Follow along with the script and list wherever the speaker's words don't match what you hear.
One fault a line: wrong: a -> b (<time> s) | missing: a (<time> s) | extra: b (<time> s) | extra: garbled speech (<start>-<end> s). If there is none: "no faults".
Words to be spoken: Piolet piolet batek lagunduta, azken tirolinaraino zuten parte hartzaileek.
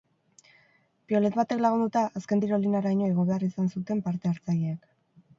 missing: piolet (1.4 s)
extra: igo behar izan (3.1 s)